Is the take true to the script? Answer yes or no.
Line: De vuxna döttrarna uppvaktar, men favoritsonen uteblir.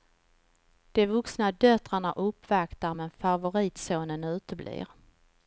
yes